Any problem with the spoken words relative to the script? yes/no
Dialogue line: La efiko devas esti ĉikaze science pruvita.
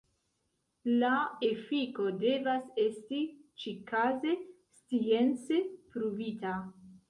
no